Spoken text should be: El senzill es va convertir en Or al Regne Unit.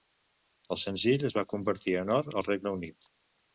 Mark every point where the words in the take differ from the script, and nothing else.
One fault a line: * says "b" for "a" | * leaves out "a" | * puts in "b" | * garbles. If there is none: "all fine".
all fine